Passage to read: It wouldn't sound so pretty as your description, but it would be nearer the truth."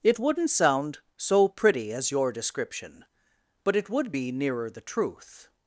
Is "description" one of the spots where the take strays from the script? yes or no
no